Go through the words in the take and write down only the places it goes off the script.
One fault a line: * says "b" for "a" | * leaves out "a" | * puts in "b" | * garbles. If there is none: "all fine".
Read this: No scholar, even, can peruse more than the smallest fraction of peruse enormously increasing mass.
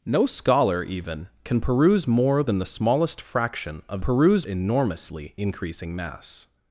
all fine